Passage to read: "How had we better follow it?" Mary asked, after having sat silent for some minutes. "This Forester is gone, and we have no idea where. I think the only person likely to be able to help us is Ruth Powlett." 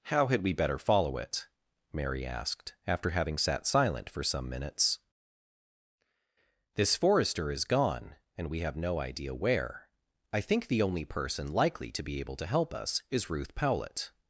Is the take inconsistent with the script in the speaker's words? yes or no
no